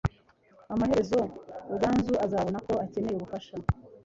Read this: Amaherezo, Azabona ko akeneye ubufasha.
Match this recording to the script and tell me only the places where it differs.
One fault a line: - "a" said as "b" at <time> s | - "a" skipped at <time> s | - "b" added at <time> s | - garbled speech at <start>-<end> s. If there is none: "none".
- "Ruganzu" added at 1.7 s